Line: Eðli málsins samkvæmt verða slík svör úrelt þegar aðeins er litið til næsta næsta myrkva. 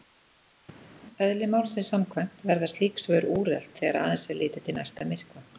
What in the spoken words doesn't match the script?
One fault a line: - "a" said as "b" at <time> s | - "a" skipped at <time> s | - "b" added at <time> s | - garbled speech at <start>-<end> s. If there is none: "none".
- "næsta" skipped at 5.1 s